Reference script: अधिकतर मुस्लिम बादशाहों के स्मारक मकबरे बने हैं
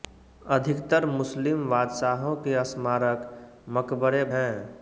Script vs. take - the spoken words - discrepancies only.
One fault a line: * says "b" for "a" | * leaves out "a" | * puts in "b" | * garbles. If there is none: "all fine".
* leaves out "बने"